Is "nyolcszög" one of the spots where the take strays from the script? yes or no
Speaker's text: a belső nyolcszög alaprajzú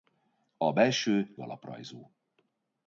yes